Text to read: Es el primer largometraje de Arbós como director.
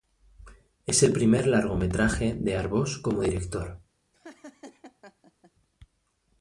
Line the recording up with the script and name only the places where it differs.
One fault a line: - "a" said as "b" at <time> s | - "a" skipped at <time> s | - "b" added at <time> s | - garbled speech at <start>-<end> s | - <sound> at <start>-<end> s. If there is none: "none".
- laugh at 4.1-5.5 s